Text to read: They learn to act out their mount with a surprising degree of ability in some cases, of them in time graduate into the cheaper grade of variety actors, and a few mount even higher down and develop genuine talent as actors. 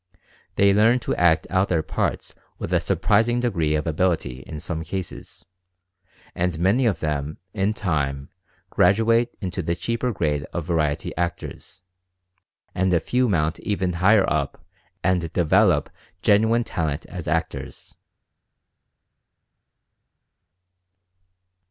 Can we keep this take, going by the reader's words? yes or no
no